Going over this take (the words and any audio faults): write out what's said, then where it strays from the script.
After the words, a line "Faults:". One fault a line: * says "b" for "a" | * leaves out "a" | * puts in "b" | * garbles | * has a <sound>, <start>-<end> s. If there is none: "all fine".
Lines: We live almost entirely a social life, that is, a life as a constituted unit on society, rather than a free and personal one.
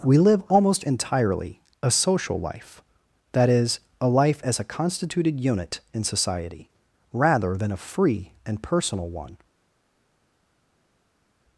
We live almost entirely a social life, that is, a life as a constituted unit in society, rather than a free and personal one.
Faults:
* says "in" for "on"